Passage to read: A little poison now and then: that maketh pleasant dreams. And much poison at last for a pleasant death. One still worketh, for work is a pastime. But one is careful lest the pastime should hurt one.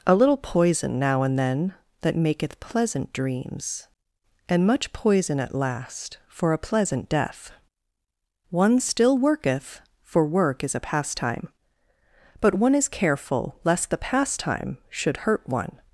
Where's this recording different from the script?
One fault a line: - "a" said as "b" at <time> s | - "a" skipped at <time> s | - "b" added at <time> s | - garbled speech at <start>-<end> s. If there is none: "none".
none